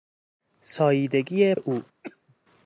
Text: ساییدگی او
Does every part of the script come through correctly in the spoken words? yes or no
yes